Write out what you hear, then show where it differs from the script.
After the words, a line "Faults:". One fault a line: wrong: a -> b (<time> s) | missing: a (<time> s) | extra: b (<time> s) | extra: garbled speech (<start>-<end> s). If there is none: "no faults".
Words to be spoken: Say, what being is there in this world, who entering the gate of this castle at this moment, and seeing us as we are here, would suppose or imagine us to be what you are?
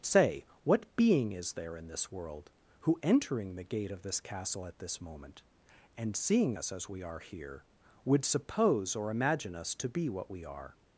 Say, what being is there in this world, who entering the gate of this castle at this moment, and seeing us as we are here, would suppose or imagine us to be what we are?
Faults:
wrong: you -> we (10.3 s)